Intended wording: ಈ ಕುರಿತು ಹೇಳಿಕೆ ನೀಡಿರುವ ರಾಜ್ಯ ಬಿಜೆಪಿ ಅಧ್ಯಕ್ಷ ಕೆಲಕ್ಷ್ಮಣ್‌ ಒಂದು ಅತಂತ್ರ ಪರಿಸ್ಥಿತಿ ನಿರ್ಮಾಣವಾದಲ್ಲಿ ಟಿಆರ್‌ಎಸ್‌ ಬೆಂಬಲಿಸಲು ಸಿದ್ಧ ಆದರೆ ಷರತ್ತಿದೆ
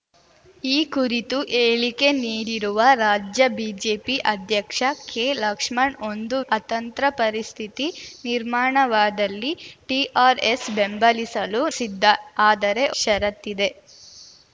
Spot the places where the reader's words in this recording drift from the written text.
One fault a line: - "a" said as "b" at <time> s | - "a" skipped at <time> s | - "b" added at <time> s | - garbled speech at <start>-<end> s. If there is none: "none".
none